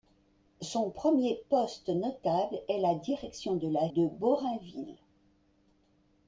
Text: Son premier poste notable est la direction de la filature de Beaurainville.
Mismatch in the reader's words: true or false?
true